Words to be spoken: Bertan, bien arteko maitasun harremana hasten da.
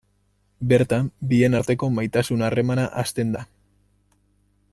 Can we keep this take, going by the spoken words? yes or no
yes